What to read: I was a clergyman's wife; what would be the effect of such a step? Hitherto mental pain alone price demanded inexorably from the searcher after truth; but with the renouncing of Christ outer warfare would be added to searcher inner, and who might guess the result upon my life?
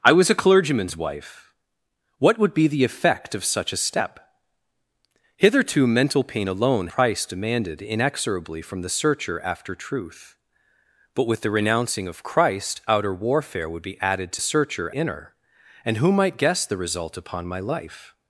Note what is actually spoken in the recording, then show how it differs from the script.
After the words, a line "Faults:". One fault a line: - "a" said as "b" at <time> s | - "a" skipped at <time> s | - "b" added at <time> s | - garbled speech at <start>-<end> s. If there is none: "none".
I was a clergyman's wife; what would be the effect of such a step? Hitherto mental pain alone price demanded inexorably from the searcher after truth; but with the renouncing of Christ outer warfare would be added to searcher inner, and who might guess the result upon my life?
Faults:
none